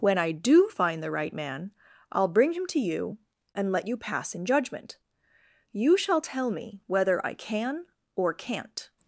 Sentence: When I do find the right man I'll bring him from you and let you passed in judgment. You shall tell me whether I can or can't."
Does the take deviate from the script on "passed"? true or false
true